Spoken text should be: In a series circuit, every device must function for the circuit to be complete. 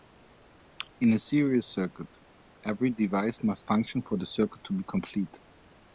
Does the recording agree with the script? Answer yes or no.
yes